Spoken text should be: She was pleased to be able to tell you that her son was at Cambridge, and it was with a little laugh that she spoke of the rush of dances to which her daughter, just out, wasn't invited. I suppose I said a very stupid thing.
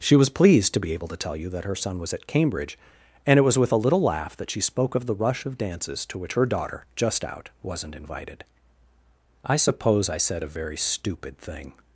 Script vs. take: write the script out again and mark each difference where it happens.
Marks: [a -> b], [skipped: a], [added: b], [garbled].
She was pleased to be able to tell you that her son was at Cambridge, and it was with a little laugh that she spoke of the rush of dances to which her daughter, just out, wasn't invited. I suppose I said a very stupid thing.